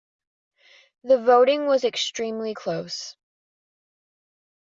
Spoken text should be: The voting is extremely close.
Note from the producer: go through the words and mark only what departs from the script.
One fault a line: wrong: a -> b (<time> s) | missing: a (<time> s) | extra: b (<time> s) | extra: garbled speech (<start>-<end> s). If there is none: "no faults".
wrong: is -> was (1.7 s)